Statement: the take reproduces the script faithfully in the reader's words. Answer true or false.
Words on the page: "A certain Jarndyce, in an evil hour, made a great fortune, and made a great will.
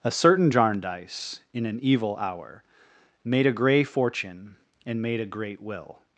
false